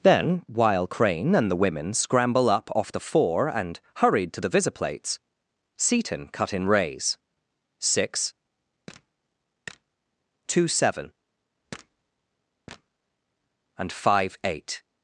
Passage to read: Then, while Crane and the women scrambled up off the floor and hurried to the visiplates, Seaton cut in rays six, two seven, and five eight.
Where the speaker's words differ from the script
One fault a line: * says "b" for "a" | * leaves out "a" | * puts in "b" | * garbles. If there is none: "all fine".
* says "scramble" for "scrambled"
* says "four" for "floor"